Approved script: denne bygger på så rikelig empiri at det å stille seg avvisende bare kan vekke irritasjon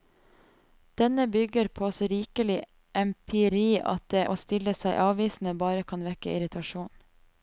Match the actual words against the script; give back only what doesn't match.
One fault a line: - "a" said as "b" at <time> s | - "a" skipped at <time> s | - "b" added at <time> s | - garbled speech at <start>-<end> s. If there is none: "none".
none